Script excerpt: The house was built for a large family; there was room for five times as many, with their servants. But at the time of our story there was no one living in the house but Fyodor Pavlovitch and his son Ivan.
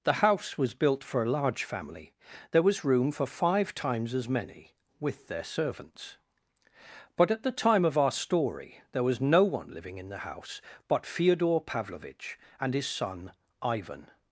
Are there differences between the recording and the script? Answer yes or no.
no